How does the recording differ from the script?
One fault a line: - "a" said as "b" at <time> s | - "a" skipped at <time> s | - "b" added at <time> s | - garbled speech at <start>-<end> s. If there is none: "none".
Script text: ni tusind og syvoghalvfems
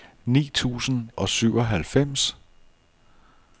none